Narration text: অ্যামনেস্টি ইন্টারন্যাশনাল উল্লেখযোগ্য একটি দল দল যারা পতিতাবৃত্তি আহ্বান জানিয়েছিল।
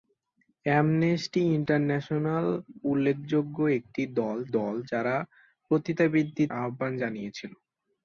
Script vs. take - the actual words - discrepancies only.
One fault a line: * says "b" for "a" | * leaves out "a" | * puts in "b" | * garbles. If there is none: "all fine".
all fine